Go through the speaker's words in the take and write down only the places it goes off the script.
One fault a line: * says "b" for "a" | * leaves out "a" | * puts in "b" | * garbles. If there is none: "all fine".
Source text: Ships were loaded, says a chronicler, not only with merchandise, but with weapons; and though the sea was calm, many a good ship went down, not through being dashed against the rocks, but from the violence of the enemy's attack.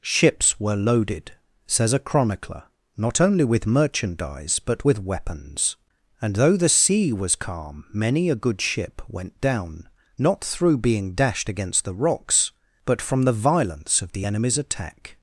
all fine